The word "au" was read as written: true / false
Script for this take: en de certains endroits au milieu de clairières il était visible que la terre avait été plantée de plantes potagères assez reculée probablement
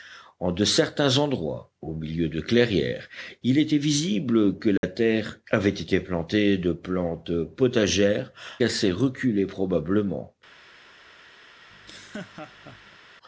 true